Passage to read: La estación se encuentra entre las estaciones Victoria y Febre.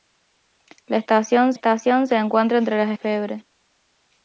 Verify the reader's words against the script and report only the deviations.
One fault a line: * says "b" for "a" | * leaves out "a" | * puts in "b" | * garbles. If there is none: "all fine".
* puts in "estación"
* leaves out "estaciones Victoria y"